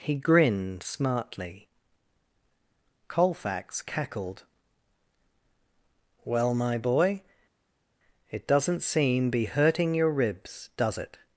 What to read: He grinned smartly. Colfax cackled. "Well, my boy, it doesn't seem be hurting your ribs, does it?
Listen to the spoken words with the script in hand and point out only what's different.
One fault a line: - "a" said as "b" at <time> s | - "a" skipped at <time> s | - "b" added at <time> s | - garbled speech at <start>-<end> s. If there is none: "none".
none